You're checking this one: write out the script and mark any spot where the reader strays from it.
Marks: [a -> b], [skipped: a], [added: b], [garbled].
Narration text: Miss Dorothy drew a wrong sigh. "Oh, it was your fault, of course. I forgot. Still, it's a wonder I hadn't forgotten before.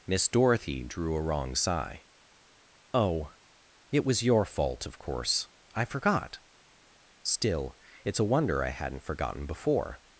Miss Dorothy drew a wrong sigh. "Oh, it was your fault, of course. I forgot. Still, it's a wonder I hadn't forgotten before.